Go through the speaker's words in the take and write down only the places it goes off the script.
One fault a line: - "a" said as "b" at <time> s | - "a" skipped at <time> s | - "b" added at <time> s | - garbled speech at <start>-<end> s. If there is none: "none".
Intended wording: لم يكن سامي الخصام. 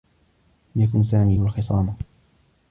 none